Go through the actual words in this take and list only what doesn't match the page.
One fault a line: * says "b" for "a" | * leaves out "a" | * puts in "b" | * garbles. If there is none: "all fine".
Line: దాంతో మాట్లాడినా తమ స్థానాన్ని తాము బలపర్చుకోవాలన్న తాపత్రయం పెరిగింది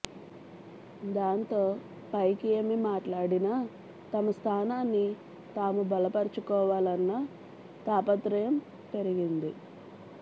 * puts in "పైకి ఏమి"